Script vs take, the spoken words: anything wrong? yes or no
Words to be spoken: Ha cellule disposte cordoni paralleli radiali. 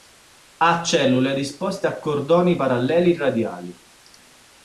yes